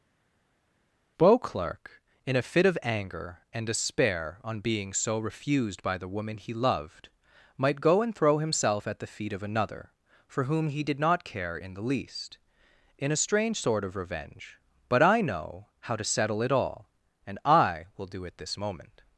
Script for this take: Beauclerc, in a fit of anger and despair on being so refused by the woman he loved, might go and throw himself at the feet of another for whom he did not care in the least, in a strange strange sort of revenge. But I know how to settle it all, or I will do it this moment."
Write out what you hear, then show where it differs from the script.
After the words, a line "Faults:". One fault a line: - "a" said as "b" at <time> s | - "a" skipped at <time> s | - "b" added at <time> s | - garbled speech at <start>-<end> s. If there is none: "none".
Beauclerc, in a fit of anger and despair on being so refused by the woman he loved, might go and throw himself at the feet of another for whom he did not care in the least, in a strange sort of revenge. But I know how to settle it all, and I will do it this moment."
Faults:
- "strange" skipped at 13.6 s
- "or" said as "and" at 17.3 s